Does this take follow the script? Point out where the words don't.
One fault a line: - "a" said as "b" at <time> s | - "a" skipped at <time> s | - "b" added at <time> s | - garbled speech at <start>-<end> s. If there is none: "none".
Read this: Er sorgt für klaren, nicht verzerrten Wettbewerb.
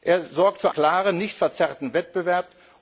none